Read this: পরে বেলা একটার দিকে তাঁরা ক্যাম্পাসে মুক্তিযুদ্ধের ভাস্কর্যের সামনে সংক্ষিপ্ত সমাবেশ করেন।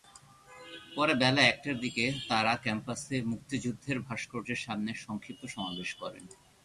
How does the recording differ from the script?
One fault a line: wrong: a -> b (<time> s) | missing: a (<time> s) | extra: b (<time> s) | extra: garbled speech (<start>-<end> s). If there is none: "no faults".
no faults